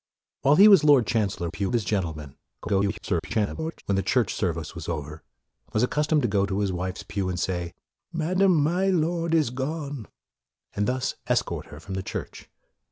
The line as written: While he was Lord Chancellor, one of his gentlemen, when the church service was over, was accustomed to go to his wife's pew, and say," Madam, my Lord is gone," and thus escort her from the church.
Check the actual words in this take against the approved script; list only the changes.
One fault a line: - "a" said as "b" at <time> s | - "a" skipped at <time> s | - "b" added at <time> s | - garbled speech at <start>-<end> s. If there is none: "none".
- "one" said as "pew" at 1.5 s
- garbled speech at 2.6-3.8 s